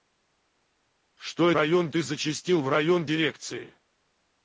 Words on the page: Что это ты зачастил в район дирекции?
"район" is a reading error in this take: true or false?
false